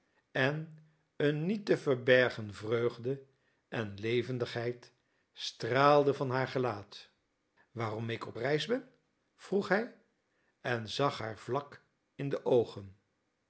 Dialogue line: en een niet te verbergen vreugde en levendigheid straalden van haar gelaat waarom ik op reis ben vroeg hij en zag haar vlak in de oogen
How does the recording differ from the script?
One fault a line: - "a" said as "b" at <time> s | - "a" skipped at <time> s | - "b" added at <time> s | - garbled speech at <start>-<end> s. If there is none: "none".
none